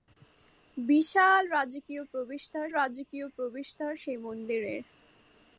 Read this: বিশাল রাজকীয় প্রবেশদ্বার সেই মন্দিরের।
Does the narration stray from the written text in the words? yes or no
yes